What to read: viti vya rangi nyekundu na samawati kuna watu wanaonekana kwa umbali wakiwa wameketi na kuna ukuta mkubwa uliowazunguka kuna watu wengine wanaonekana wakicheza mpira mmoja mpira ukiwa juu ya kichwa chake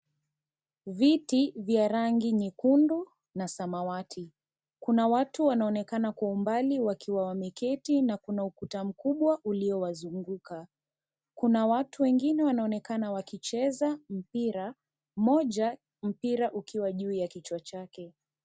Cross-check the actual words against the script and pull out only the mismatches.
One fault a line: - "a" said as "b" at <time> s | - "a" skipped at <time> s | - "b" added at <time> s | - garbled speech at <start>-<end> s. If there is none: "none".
none